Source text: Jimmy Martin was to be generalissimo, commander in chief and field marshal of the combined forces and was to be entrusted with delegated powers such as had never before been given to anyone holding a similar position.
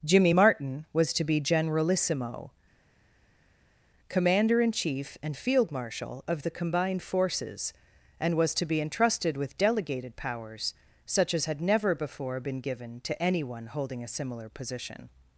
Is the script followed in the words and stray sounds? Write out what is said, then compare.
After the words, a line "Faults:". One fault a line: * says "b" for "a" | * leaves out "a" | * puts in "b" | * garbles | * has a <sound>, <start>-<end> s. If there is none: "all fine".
Jimmy Martin was to be generalissimo, commander in chief and field marshal of the combined forces and was to be entrusted with delegated powers such as had never before been given to anyone holding a similar position.
Faults:
all fine